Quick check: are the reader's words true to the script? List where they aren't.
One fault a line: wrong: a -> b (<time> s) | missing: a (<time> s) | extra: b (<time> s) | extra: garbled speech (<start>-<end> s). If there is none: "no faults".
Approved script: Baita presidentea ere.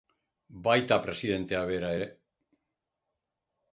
extra: bera (1.7 s)